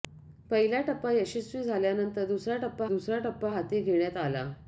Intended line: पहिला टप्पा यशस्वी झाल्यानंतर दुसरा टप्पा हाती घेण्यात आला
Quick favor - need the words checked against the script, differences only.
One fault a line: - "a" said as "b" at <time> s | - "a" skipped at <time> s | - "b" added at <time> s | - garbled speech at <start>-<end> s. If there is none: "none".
- "दुसरा टप्पा" added at 2.9 s